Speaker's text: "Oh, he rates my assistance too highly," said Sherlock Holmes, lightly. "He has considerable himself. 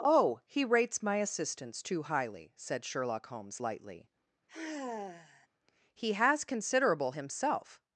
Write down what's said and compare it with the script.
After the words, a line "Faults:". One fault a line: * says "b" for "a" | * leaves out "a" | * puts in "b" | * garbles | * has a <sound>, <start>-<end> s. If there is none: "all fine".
"Oh, he rates my assistance too highly," said Sherlock Holmes, lightly. "He has considerable himself.
Faults:
* has a sigh, 4.5-5.5 s